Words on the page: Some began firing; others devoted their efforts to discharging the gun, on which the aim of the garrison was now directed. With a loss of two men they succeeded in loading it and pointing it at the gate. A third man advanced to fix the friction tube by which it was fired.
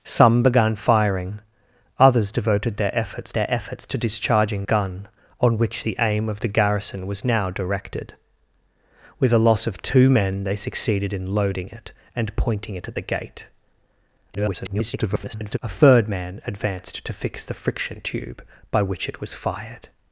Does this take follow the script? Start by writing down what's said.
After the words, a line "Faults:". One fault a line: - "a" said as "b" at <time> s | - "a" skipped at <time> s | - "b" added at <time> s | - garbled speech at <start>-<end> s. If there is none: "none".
Some began firing; others devoted their efforts their efforts to discharging gun, on which the aim of the garrison was now directed. With a loss of two men they succeeded in loading it and pointing it at the gate. [garbled] A third man advanced to fix the friction tube by which it was fired.
Faults:
- "their efforts" added at 3.3 s
- "the" skipped at 4.7 s
- garbled speech at 14.3-15.6 s